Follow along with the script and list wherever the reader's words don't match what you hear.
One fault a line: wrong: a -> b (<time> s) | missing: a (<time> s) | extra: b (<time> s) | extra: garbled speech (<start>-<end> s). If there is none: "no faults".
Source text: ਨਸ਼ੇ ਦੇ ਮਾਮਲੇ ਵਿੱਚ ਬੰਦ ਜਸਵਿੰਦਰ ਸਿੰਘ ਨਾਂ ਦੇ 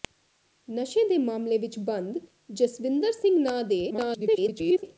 extra: garbled speech (3.9-4.8 s)